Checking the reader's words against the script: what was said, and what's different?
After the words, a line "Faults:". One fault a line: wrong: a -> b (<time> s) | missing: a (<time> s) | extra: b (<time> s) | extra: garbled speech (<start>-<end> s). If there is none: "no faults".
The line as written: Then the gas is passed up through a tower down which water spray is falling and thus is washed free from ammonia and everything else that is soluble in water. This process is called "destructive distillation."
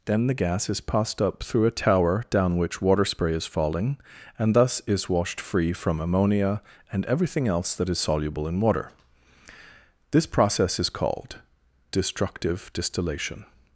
Then the gas is passed up through a tower down which water spray is falling and thus is washed free from ammonia and everything else that is soluble in water. This process is called "destructive distillation."
Faults:
no faults